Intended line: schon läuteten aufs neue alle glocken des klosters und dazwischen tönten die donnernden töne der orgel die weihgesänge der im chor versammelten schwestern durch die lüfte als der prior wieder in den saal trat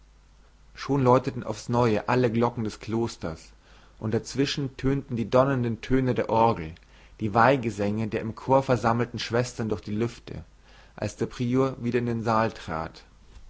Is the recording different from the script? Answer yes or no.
no